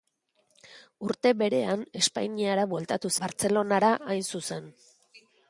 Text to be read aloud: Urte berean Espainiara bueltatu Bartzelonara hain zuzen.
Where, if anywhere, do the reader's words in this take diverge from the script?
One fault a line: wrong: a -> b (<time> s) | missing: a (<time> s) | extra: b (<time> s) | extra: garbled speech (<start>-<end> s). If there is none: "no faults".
no faults